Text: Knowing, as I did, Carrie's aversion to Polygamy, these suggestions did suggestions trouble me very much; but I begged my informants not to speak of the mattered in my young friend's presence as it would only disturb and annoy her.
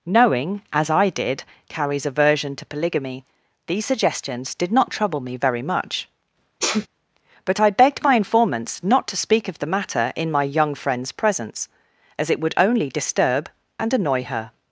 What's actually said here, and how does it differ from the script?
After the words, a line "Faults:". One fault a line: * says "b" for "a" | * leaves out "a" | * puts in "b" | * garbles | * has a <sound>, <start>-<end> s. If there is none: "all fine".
Knowing, as I did, Carrie's aversion to Polygamy, these suggestions did not trouble me very much; but I begged my informants not to speak of the matter in my young friend's presence as it would only disturb and annoy her.
Faults:
* says "not" for "suggestions"
* has a sneeze, 6.6-6.9 s
* says "matter" for "mattered"